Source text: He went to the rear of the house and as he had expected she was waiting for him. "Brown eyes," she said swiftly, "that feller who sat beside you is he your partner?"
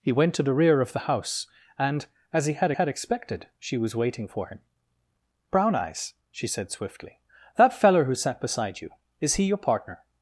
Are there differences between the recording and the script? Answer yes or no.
yes